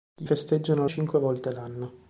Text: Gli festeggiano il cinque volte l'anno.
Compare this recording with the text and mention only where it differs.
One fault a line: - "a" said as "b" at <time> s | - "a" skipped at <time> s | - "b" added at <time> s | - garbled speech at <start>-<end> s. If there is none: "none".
none